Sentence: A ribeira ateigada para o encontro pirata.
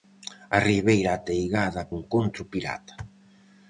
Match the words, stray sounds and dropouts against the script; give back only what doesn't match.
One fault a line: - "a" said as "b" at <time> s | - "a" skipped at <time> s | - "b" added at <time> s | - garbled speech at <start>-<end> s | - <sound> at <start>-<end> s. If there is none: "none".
- "para" skipped at 1.8 s